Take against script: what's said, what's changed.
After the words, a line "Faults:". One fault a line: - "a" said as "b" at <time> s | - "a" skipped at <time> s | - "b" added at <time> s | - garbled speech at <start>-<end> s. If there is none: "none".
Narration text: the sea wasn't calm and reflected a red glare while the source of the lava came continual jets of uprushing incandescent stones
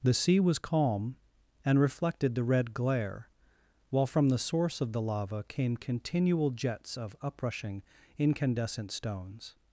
the sea was calm and reflected the red glare while from the source of the lava came continual jets of uprushing incandescent stones
Faults:
- "wasn't" said as "was" at 0.4 s
- "a" said as "the" at 2.3 s
- "from" added at 4.1 s